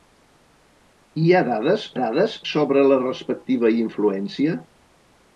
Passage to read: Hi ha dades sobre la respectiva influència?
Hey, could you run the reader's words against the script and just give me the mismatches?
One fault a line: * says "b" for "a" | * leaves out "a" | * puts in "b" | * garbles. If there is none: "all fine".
* puts in "dades"